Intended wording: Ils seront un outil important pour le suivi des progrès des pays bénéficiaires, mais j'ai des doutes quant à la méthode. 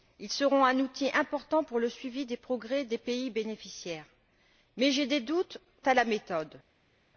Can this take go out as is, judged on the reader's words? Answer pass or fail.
fail